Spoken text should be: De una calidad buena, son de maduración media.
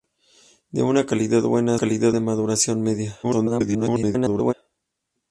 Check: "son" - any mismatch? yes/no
yes